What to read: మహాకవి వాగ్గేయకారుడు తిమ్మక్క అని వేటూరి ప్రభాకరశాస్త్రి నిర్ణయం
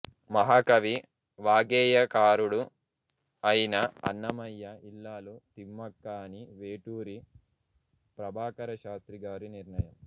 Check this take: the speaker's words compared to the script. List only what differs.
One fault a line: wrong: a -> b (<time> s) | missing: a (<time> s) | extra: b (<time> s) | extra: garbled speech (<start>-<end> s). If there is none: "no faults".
extra: అయిన అన్నమయ్య ఇల్లాలు (3.4 s)
extra: గారి (9.2 s)